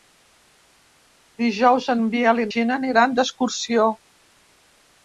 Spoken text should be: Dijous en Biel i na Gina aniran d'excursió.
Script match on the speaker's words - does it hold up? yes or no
no